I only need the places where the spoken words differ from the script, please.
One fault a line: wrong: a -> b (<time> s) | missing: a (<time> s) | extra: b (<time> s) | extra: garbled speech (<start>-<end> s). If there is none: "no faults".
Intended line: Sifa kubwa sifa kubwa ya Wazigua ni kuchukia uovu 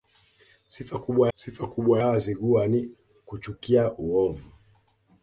no faults